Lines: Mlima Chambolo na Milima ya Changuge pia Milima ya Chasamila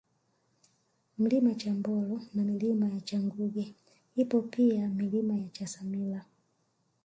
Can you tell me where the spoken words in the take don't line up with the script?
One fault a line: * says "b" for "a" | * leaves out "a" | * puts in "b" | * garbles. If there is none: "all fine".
* puts in "ipo"